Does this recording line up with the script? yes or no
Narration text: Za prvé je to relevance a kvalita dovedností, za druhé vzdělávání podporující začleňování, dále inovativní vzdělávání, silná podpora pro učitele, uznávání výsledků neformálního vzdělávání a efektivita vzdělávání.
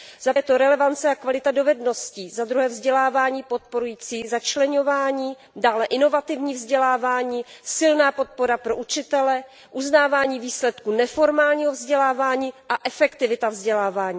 no